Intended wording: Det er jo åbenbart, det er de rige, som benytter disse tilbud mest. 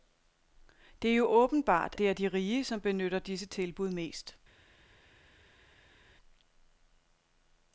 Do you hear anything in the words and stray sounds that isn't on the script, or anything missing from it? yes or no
no